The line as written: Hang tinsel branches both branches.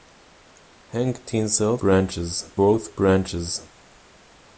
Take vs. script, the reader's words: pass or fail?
pass